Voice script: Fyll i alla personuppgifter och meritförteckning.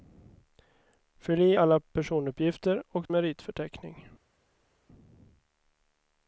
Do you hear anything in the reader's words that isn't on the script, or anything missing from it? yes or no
no